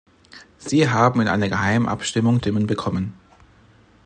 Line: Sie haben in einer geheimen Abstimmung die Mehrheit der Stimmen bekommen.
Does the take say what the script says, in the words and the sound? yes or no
no